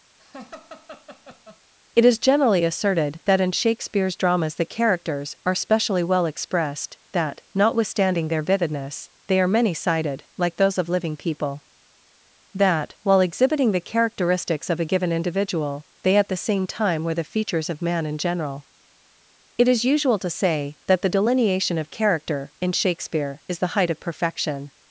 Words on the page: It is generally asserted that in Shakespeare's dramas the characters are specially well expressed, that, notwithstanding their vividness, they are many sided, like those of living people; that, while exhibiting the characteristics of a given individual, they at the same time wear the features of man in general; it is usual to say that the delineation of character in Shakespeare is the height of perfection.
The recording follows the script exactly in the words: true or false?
false